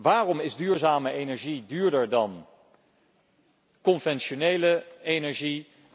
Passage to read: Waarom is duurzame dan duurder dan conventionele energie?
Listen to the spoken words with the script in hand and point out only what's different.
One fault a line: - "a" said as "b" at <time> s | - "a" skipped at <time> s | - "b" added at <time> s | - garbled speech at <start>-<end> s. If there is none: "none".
- "dan" said as "energie" at 1.1 s